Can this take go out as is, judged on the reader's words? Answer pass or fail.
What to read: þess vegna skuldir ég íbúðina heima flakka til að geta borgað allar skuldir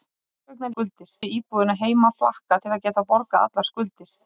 pass